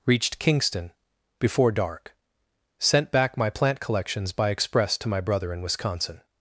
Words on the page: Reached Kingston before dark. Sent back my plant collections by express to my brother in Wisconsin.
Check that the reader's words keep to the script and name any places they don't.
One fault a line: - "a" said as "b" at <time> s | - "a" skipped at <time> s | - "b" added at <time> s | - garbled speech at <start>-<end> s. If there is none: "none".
none